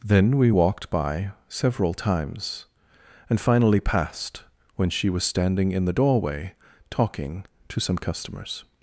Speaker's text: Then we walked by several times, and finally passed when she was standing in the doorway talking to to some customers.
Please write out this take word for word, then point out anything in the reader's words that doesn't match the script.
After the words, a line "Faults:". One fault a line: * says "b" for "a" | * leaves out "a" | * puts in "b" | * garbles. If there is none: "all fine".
Then we walked by several times, and finally passed when she was standing in the doorway talking to some customers.
Faults:
* leaves out "to"